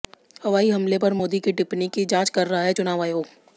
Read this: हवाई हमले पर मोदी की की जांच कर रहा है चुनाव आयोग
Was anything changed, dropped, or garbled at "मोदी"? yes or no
no